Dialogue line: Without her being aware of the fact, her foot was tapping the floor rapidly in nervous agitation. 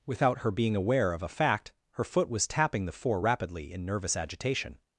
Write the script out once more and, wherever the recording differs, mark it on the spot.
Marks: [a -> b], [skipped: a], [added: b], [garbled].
Without her being aware of [the -> a] fact, her foot was tapping the [floor -> four] rapidly in nervous agitation.